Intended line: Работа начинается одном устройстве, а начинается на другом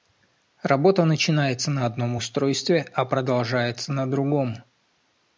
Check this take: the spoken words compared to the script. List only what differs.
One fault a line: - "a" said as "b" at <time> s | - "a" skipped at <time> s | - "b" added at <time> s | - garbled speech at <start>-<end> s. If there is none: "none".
- "на" added at 1.7 s
- "начинается" said as "продолжается" at 3.1 s